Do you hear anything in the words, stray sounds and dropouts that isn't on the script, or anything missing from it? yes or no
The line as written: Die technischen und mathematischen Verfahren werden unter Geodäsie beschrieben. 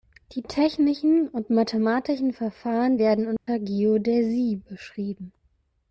yes